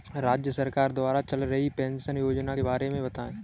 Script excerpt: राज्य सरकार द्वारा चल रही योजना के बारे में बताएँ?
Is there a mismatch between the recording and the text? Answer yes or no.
yes